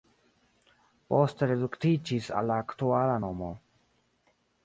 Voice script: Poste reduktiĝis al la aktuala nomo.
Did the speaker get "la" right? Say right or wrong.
right